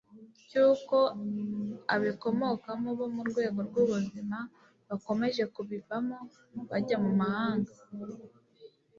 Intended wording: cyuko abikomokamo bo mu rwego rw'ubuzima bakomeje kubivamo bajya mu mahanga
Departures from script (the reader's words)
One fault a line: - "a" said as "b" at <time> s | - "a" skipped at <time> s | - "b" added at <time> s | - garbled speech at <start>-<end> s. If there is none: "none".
none